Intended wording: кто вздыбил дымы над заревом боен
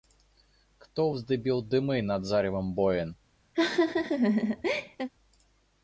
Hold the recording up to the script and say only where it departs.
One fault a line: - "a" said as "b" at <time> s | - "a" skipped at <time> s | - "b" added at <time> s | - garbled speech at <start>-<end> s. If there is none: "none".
none